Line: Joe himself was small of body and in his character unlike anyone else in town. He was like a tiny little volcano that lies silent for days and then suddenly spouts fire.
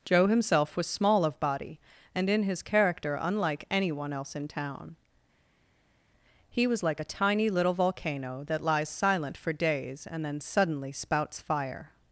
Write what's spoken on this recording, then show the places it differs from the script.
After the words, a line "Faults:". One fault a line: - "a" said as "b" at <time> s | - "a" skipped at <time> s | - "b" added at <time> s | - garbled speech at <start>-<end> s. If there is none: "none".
Joe himself was small of body and in his character unlike anyone else in town. He was like a tiny little volcano that lies silent for days and then suddenly spouts fire.
Faults:
none